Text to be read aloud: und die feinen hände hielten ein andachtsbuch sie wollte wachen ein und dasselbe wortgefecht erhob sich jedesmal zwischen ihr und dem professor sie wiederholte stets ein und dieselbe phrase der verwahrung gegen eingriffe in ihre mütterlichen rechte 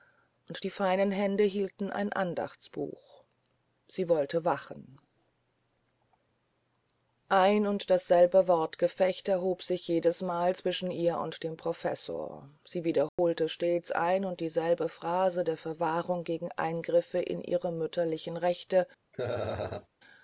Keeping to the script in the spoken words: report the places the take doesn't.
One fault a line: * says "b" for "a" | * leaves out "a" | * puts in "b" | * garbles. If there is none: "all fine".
all fine